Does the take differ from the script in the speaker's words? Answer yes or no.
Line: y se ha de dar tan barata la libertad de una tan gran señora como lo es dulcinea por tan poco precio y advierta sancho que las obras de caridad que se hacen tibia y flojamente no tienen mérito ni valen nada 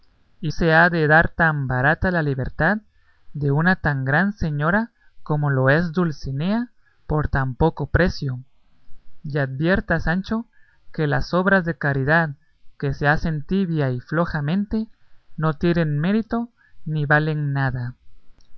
no